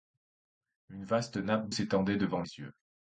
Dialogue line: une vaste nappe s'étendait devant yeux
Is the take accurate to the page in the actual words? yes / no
yes